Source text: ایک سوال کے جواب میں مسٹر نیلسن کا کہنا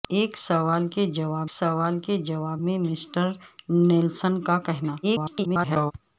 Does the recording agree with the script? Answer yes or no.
no